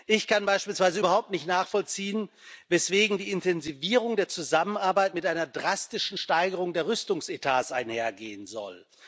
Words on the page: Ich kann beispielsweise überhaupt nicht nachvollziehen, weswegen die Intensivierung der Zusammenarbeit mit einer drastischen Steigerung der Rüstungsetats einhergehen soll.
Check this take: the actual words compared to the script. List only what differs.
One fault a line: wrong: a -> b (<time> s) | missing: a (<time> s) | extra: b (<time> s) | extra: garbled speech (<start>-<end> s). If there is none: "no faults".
no faults